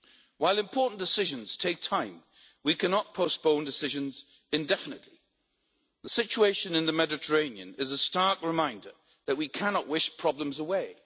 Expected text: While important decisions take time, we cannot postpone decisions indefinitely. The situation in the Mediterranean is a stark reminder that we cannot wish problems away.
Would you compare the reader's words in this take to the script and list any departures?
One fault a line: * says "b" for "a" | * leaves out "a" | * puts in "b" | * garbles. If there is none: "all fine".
all fine